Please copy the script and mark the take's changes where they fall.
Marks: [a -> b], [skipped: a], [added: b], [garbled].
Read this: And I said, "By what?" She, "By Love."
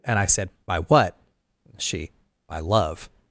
And I said, "By what?" She, "By Love."